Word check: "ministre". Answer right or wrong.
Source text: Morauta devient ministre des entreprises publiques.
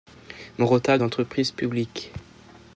wrong